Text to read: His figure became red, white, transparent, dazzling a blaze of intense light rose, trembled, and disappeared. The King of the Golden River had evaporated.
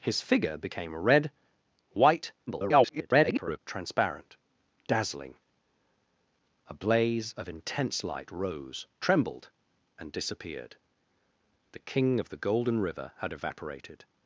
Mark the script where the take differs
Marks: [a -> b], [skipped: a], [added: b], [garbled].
His figure became red, white, [garbled] transparent, dazzling a blaze of intense light rose, trembled, and disappeared. The King of the Golden River had evaporated.